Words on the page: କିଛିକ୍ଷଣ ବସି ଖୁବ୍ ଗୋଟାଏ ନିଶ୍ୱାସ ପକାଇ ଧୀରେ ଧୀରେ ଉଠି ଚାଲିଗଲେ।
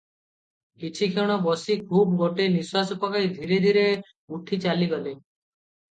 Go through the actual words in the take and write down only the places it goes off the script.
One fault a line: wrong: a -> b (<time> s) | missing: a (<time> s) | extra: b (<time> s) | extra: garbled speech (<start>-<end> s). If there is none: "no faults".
no faults